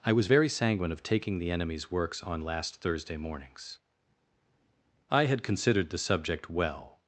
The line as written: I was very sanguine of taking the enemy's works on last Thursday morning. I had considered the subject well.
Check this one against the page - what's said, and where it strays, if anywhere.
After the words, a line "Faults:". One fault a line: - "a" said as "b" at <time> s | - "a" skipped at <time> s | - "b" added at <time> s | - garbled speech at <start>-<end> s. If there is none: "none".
I was very sanguine of taking the enemy's works on last Thursday mornings. I had considered the subject well.
Faults:
- "morning" said as "mornings" at 3.2 s